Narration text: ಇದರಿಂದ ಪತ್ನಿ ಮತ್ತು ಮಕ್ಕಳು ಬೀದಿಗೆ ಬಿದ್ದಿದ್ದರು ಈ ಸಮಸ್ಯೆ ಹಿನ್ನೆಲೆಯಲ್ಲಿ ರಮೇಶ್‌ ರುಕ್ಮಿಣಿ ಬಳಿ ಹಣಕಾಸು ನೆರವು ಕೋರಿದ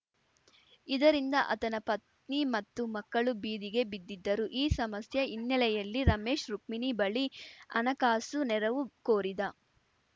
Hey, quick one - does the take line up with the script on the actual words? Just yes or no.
no